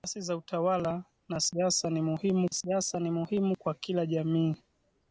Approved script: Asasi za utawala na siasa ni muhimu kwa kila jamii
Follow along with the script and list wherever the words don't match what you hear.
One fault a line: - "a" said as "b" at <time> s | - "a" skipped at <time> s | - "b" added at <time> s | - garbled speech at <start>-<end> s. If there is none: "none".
- "siasa ni muhimu" added at 2.5 s